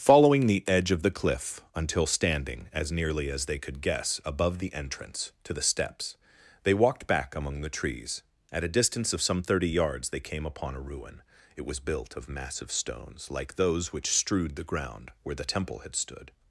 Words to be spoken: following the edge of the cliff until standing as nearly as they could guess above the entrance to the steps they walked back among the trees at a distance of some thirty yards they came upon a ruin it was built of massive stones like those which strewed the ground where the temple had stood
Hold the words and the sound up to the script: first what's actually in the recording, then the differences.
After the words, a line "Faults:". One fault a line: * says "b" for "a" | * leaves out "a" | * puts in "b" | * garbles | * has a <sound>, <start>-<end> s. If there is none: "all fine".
following the edge of the cliff until standing as nearly as they could guess above the entrance to the steps they walked back among the trees at a distance of some thirty yards they came upon a ruin it was built of massive stones like those which strewed the ground where the temple had stood
Faults:
all fine